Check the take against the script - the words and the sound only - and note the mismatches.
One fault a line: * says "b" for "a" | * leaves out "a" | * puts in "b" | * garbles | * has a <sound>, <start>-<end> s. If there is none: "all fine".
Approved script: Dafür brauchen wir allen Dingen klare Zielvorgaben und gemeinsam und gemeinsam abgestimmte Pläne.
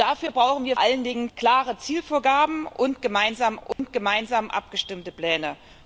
* has a dropout, 3.7-3.8 s